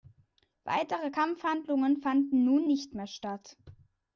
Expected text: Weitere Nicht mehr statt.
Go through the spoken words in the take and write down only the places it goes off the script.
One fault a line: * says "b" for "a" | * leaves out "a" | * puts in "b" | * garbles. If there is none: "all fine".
* puts in "Kampfhandlungen fanden nun"